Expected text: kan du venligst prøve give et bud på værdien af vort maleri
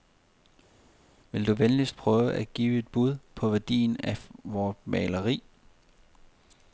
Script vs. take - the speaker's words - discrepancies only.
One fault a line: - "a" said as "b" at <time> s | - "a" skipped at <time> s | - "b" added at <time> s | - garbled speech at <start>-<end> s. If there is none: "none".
- "kan" said as "vil" at 1.3 s
- "at" added at 2.3 s